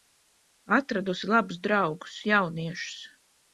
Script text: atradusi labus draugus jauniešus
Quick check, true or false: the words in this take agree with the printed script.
true